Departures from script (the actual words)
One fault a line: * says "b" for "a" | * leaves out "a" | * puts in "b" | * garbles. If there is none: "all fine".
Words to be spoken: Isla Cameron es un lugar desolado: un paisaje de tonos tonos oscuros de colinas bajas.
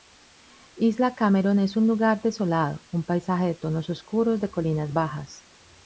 * leaves out "tonos"